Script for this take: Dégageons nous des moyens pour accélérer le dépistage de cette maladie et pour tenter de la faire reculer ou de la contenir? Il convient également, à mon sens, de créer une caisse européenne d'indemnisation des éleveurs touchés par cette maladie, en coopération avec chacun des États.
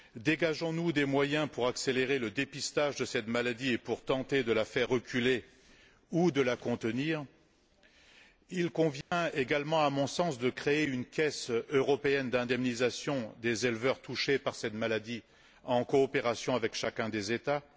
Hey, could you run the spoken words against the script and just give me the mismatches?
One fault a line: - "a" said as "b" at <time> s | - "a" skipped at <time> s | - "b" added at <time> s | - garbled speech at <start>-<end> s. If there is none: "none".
none